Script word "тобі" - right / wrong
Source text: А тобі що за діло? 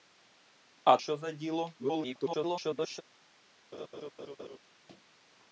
wrong